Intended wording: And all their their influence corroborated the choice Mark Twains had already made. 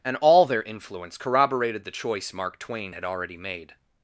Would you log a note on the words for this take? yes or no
yes